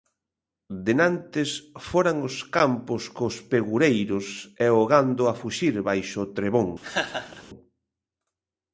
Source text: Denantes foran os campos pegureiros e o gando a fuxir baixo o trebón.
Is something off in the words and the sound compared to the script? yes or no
yes